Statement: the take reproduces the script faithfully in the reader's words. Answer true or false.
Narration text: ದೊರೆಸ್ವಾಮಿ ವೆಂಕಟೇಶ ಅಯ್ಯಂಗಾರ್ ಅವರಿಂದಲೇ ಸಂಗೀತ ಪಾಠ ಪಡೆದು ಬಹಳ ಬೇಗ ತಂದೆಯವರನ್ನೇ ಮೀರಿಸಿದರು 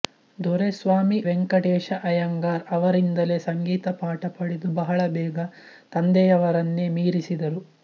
true